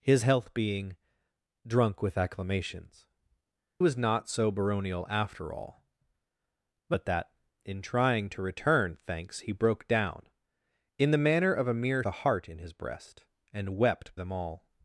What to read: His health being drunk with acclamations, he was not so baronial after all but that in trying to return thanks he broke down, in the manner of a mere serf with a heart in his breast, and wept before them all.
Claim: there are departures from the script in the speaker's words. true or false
true